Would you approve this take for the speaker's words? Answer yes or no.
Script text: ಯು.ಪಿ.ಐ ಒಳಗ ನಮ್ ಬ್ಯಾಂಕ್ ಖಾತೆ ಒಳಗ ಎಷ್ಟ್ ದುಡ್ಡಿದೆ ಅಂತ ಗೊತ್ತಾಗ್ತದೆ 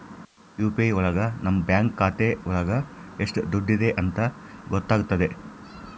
yes